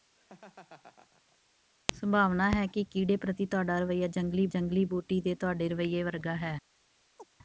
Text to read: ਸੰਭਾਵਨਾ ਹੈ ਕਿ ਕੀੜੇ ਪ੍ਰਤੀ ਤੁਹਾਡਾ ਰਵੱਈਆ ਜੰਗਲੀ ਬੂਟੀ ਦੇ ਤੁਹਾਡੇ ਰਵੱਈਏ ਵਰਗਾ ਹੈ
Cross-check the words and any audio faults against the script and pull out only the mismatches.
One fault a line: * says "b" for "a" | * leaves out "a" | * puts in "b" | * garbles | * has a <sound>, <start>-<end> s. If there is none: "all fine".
* has a laugh, 0.2-1.4 s
* puts in "ਜੰਗਲੀ"
* has a chirp, 7.2-7.3 s